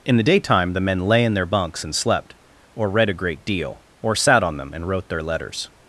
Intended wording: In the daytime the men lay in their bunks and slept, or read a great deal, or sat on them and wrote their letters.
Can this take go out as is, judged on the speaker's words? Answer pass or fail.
pass